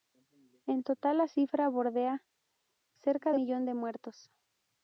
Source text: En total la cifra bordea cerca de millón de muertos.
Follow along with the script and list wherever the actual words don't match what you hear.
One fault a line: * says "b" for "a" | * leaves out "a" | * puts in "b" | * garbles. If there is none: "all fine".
all fine